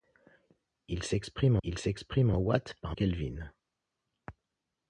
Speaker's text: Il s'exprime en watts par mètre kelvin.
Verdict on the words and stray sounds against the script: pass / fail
fail